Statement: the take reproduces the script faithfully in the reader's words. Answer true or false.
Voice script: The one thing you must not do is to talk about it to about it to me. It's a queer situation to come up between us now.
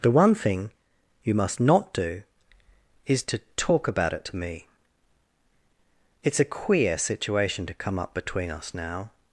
false